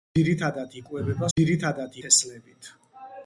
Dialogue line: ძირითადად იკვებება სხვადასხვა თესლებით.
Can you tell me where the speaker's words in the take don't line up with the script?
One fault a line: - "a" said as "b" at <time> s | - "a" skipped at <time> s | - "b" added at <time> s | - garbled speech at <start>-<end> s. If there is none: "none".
- "სხვადასხვა" said as "ძირითადად" at 1.4 s